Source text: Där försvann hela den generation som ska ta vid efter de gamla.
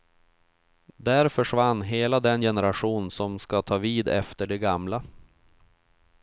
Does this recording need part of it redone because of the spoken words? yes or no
no